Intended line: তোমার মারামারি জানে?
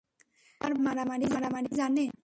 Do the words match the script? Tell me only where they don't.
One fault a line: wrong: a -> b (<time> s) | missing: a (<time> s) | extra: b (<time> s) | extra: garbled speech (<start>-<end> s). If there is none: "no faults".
no faults